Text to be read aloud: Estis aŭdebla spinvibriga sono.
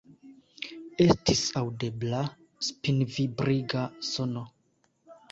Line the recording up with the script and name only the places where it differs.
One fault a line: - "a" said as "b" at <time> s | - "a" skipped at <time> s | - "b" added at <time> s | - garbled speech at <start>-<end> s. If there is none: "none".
none